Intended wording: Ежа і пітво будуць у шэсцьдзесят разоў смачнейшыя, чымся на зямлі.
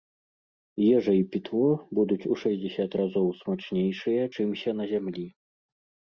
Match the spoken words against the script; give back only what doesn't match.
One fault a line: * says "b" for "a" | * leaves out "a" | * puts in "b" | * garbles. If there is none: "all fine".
all fine